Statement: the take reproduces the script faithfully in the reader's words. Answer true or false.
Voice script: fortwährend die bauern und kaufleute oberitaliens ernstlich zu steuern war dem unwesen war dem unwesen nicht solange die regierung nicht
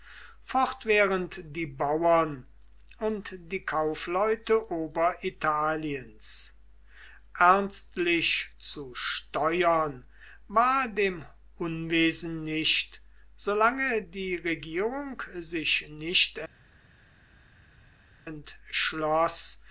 false